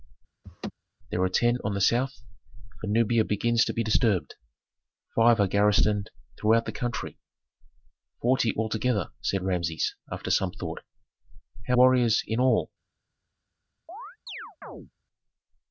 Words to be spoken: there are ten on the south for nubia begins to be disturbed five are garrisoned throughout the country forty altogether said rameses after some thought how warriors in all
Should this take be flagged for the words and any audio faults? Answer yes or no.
yes